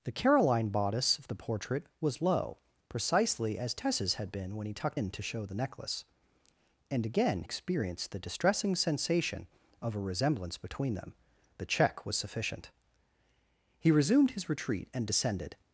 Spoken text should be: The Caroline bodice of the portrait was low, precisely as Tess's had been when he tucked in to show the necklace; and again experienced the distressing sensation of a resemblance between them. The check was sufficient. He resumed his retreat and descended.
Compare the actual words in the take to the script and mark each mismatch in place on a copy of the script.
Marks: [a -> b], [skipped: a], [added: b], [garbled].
The Caroline bodice of the portrait was low, precisely as Tess's had been when he tucked in to show the necklace; and again experienced the distressing sensation of a resemblance between them. The check was sufficient. He resumed his retreat and descended.